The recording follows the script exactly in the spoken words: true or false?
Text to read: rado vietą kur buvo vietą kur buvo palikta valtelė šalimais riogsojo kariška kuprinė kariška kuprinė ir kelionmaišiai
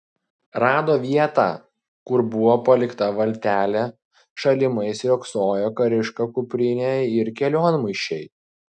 false